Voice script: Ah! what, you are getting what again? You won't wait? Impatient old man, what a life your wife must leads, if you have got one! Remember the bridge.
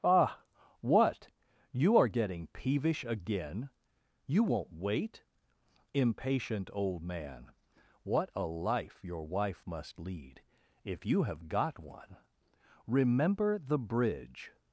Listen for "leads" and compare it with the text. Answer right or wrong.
wrong